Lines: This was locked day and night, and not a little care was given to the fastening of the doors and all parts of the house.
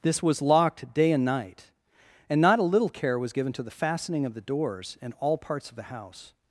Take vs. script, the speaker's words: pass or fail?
pass